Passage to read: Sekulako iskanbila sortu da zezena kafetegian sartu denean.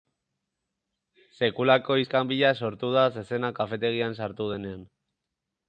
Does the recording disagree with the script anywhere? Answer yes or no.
no